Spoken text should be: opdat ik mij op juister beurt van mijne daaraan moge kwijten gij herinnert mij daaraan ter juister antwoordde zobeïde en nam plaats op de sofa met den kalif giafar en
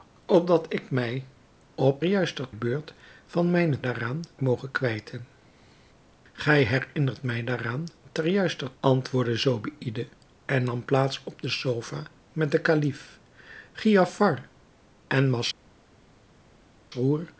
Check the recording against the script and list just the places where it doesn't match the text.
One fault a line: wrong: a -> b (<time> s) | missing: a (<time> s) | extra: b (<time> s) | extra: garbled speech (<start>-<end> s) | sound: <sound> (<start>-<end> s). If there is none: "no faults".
no faults